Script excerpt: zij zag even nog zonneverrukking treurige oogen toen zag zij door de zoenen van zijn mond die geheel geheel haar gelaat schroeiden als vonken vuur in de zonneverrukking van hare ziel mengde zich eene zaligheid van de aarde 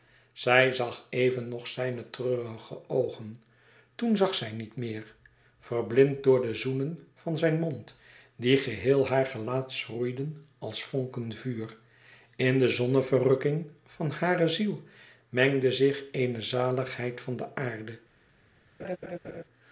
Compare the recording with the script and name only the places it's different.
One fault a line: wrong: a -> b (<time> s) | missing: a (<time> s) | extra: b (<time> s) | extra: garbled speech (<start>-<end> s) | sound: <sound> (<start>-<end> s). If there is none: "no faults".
wrong: zonneverrukking -> zijne (1.7 s)
extra: niet meer verblind (4.5 s)
missing: geheel (9.1 s)
sound: laugh (18.8-19.4 s)